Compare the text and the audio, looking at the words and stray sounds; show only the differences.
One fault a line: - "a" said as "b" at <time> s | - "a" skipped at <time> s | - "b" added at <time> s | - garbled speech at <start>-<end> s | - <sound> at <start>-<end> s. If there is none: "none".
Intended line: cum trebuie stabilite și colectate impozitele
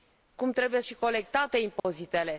- "stabilite" skipped at 0.8 s
- dropout at 1.8-1.8 s